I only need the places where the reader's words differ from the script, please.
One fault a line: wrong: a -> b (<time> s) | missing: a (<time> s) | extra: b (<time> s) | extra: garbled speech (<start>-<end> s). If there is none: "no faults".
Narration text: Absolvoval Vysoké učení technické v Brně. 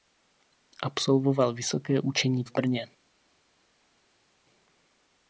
missing: technické (2.4 s)